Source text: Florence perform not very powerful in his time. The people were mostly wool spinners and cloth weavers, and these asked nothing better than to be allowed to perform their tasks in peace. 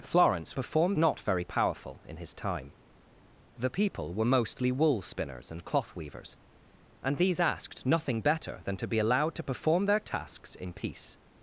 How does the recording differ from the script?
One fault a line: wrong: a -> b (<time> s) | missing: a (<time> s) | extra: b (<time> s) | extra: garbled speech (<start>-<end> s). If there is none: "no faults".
no faults